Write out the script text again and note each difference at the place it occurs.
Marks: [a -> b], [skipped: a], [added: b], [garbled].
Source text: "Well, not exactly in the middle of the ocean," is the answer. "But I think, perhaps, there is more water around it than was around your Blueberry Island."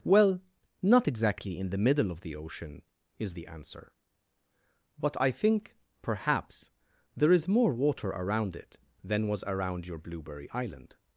"Well, not exactly in the middle of the ocean," is the answer. "But I think, perhaps, there is more water around it than was around your Blueberry Island."